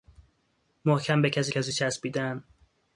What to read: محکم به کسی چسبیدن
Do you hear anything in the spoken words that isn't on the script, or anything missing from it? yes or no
yes